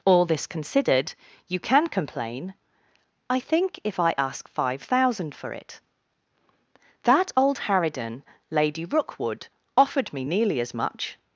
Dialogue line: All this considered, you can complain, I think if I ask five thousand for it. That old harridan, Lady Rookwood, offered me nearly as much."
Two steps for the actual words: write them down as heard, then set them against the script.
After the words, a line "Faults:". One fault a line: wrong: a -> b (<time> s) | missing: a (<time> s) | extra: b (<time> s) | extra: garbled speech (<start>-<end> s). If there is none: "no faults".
All this considered, you can complain, I think if I ask five thousand for it. That old harridan, Lady Rookwood, offered me nearly as much."
Faults:
no faults